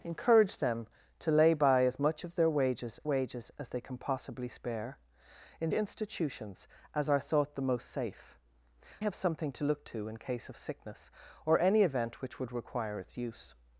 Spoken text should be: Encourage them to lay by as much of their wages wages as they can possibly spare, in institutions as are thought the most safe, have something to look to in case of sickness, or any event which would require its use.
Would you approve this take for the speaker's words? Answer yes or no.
yes